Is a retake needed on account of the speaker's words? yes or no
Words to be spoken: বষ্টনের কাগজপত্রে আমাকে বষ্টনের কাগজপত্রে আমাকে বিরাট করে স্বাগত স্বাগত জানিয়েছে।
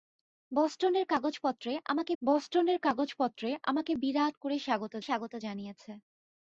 no